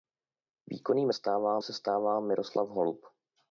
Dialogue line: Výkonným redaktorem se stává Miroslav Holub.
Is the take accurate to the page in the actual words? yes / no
no